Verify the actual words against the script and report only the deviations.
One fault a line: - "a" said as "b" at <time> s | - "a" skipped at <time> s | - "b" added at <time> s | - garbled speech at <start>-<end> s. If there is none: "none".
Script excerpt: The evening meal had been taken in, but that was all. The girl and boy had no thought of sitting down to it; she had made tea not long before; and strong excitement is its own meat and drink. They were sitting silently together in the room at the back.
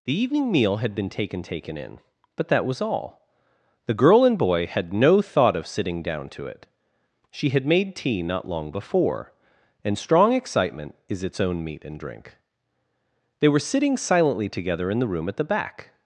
- "taken" added at 1.4 s